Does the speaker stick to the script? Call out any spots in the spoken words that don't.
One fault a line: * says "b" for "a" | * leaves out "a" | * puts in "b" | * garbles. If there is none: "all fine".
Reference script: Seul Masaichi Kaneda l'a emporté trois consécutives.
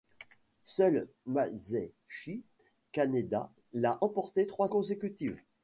all fine